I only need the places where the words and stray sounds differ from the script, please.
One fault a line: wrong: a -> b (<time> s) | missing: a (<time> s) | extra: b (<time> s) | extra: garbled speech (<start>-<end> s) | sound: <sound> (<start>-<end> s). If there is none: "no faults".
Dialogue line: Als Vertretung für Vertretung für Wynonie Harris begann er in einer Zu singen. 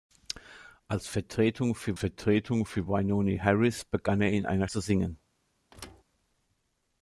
sound: thud (5.7-6.0 s)